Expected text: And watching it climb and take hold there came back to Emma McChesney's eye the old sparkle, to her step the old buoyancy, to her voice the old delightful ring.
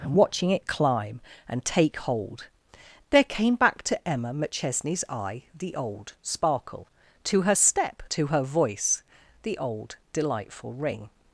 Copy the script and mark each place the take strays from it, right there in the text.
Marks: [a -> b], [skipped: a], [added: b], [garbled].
And watching it climb and take hold there came back to Emma McChesney's eye the old sparkle, to her step [skipped: the old buoyancy,] to her voice the old delightful ring.